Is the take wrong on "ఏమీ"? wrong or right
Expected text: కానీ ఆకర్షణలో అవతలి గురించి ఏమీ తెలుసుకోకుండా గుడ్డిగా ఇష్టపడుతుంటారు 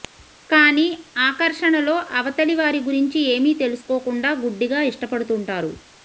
right